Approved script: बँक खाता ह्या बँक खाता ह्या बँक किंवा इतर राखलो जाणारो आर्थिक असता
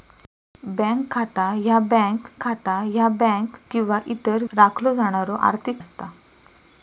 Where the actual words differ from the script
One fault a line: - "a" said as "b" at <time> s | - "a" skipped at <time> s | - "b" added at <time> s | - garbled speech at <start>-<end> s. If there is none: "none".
none